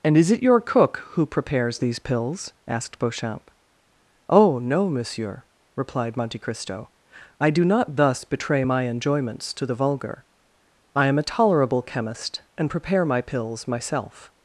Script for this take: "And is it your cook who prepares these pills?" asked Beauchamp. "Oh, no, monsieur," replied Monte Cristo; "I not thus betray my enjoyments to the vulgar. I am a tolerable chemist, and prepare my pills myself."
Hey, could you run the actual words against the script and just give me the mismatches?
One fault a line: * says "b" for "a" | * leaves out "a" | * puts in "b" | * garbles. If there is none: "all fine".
* puts in "do"